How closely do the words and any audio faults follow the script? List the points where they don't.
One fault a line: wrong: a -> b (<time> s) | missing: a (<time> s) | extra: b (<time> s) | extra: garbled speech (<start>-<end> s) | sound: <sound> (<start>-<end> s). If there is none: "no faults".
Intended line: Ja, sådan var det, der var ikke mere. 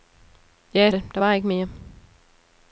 missing: sådan var (0.9 s)